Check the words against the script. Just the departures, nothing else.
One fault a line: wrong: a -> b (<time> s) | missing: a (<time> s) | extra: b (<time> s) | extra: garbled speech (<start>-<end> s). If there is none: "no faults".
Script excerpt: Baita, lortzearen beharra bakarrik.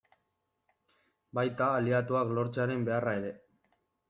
extra: aliatuak (1.8 s)
wrong: bakarrik -> ere (3.2 s)